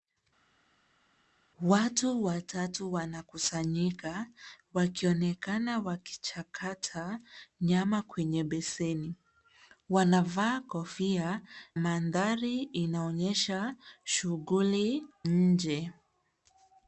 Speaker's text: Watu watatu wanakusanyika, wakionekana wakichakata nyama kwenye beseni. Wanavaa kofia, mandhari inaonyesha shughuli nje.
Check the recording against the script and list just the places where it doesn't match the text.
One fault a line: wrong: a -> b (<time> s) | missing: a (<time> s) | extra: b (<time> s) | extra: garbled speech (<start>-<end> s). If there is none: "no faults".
no faults